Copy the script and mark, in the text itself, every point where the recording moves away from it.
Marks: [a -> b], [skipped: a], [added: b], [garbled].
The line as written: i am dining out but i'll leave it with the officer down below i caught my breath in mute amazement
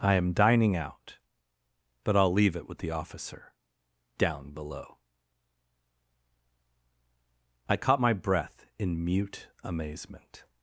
i am dining out but i'll leave it with the officer down below i caught my breath in mute amazement